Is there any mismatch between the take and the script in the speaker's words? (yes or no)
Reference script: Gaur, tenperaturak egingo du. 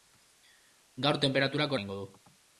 no